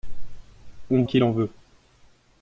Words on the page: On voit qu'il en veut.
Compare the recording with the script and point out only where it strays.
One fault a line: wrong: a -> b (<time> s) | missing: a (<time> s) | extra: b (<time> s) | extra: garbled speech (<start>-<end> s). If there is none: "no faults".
missing: voit (1.0 s)